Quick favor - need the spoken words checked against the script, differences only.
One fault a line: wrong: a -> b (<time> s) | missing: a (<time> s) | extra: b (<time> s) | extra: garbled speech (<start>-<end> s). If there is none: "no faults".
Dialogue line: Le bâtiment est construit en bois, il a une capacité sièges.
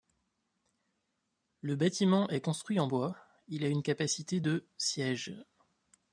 extra: de (4.4 s)